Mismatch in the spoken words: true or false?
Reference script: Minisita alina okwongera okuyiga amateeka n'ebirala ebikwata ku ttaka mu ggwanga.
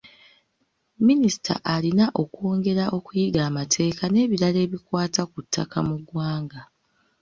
false